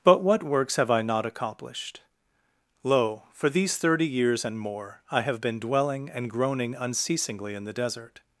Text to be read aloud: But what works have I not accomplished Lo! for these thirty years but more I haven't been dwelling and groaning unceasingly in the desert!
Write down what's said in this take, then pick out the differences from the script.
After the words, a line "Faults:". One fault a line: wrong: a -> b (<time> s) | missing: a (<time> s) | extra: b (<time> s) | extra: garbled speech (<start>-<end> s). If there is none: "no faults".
But what works have I not accomplished Lo! for these thirty years and more I have been dwelling and groaning unceasingly in the desert!
Faults:
wrong: but -> and (4.4 s)
wrong: haven't -> have (5.2 s)